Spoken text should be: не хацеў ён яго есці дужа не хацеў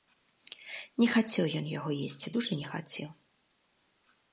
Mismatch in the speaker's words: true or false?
false